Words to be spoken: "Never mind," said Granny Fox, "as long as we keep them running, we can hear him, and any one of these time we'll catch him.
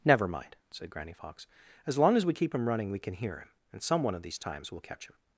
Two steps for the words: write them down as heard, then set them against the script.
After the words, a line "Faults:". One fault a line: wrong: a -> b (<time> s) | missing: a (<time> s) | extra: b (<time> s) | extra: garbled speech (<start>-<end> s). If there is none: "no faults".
"Never mind," said Granny Fox, "as long as we keep him running, we can hear him, and some one of these times we'll catch him.
Faults:
wrong: them -> him (2.5 s)
wrong: any -> some (3.8 s)
wrong: time -> times (4.4 s)